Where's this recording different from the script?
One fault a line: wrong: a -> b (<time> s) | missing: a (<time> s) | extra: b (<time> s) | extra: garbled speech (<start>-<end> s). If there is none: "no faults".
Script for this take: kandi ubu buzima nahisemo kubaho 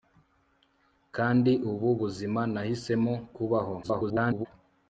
extra: garbled speech (3.8-4.5 s)